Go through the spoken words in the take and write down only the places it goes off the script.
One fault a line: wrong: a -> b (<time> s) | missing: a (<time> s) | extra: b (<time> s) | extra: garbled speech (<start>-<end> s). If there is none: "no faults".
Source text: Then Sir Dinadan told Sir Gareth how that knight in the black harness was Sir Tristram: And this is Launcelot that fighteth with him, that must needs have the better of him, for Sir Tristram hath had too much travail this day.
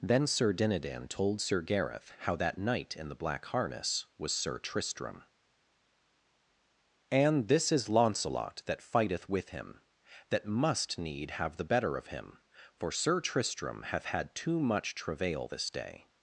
wrong: needs -> need (11.0 s)